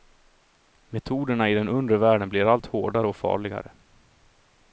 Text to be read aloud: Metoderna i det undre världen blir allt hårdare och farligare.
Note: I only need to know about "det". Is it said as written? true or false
false